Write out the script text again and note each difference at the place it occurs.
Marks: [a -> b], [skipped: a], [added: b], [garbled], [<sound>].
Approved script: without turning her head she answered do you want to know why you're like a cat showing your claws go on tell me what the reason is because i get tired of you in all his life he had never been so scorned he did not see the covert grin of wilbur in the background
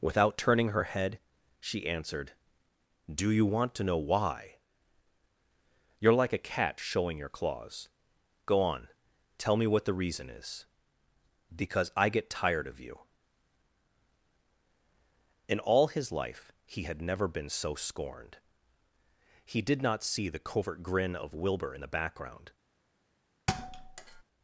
without turning her head she answered do you want to know why you're like a cat showing your claws go on tell me what the reason is because i get tired of you in all his life he had never been so scorned he did not see the covert grin of wilbur in the background [thud]